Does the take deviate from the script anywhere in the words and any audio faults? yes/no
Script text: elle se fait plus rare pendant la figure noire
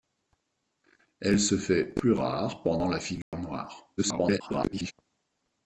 yes